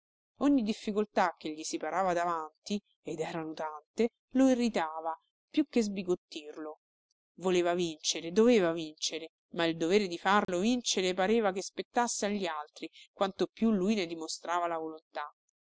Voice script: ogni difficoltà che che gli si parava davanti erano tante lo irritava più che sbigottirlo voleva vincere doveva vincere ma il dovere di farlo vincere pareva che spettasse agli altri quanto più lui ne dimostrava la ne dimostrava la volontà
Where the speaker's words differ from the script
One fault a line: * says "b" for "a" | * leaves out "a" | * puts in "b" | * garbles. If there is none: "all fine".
* leaves out "che"
* puts in "ed"
* leaves out "ne dimostrava la"